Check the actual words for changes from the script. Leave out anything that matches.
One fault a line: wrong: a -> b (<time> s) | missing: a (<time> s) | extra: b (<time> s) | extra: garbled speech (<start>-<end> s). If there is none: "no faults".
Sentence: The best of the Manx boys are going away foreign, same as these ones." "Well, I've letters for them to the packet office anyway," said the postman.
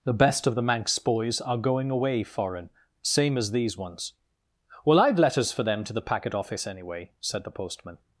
no faults